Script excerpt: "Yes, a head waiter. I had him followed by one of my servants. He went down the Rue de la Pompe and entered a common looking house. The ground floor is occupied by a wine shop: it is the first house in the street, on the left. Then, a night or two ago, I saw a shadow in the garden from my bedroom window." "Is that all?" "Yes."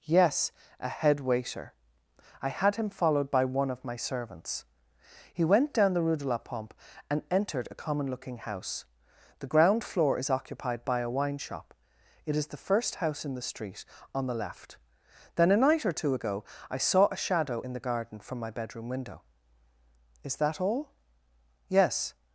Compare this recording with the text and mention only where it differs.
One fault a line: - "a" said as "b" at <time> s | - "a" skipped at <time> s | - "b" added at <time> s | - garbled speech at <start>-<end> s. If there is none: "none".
none